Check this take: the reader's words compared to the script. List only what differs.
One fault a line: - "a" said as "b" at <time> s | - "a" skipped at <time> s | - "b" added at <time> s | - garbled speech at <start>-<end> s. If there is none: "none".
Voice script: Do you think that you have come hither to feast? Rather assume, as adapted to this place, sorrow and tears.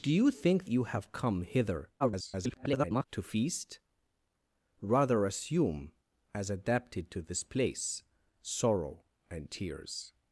- "that" skipped at 0.7 s
- garbled speech at 2.0-3.0 s